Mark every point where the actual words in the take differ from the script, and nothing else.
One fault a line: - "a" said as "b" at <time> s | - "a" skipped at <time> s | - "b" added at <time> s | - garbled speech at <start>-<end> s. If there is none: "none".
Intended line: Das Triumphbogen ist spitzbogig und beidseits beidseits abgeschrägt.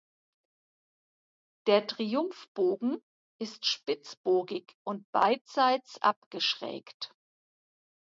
- "Das" said as "Der" at 1.7 s
- "beidseits" skipped at 6.0 s